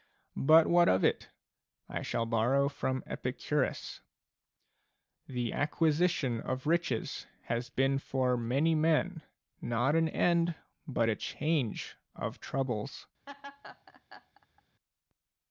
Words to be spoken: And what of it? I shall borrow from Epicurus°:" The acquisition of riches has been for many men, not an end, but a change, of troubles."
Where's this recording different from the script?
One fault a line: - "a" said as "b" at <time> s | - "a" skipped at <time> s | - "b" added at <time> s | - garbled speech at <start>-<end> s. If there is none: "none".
- "And" said as "But" at 0.3 s